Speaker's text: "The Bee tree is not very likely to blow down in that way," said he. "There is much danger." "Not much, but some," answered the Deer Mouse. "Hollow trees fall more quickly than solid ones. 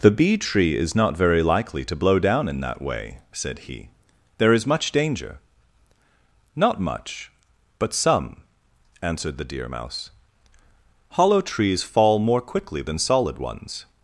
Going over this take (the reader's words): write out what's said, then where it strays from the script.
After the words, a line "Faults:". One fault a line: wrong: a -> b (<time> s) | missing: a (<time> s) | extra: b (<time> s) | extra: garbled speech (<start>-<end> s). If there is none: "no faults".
"The Bee tree is not very likely to blow down in that way," said he. "There is much danger." "Not much, but some," answered the Deer Mouse. "Hollow trees fall more quickly than solid ones.
Faults:
no faults